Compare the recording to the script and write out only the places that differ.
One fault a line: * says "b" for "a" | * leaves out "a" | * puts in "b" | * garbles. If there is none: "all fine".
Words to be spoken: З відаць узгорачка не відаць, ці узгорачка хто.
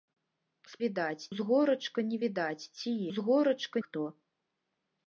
all fine